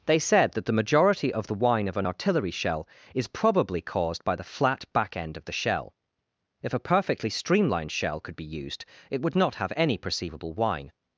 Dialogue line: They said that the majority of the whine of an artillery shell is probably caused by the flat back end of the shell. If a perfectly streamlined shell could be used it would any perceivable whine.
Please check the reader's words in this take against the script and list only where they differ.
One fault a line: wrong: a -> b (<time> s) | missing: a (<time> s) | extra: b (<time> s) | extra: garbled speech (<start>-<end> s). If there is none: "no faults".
extra: not have (9.3 s)